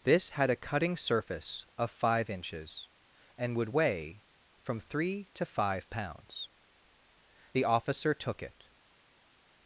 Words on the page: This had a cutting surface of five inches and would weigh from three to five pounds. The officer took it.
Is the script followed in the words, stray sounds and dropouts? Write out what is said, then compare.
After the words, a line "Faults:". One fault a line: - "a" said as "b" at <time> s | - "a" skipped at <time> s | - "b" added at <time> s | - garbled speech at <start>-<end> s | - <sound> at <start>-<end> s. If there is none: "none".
This had a cutting surface of five inches and would weigh from three to five pounds. The officer took it.
Faults:
none